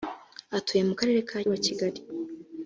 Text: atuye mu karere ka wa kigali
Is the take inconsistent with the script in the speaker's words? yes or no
no